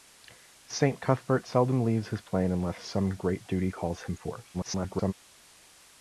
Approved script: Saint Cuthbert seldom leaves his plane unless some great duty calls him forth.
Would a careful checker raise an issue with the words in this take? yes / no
yes